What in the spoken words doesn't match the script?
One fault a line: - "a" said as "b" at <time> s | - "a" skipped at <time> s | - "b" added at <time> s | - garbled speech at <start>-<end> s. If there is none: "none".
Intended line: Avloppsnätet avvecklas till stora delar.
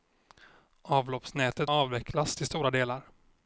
none